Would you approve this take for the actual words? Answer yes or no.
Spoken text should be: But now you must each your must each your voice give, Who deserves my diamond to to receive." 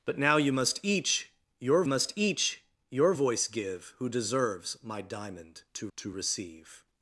yes